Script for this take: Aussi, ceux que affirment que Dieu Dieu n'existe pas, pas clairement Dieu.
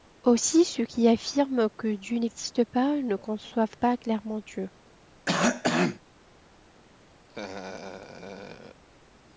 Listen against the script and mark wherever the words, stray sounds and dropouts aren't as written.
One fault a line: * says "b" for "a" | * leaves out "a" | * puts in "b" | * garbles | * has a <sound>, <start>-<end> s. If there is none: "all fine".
* says "qui" for "que"
* leaves out "Dieu"
* puts in "ne conçoivent"
* has a cough, 5.3-6.0 s
* has a laugh, 7.3-8.8 s